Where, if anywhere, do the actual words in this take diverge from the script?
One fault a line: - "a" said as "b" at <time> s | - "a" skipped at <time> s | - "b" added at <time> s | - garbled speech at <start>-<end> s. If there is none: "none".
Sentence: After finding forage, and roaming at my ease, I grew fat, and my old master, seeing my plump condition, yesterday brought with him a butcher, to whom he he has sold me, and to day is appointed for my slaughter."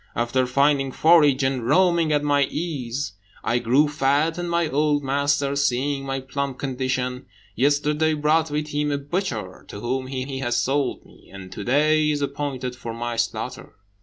none